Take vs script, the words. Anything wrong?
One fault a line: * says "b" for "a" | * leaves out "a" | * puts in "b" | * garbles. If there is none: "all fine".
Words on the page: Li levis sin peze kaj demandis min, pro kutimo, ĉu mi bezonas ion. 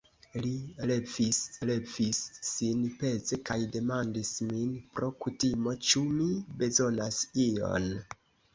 * puts in "levis"